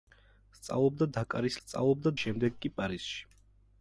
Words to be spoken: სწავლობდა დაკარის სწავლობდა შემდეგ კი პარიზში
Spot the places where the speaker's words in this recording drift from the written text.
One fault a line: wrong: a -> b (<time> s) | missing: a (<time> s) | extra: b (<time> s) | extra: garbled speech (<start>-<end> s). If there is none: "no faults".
no faults